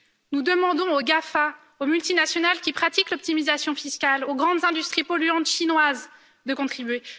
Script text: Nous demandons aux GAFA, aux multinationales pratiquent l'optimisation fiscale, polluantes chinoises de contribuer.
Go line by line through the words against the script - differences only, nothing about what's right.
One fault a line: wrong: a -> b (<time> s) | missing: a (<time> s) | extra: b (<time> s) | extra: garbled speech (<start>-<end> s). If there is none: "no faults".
extra: qui (2.6 s)
extra: aux grandes industries (4.2 s)